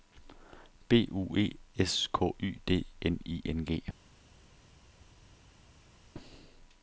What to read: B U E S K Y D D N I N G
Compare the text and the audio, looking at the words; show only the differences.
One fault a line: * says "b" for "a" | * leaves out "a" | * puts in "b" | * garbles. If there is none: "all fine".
* leaves out "D"